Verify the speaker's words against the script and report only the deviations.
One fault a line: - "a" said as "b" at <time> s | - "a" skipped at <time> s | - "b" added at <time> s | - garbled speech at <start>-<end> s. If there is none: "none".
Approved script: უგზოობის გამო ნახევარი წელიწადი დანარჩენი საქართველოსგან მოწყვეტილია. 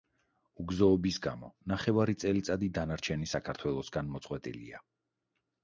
none